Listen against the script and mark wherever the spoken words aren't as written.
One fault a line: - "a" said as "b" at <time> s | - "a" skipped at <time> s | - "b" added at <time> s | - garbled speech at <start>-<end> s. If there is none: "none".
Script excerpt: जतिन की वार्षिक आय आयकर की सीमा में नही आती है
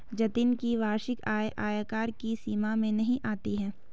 none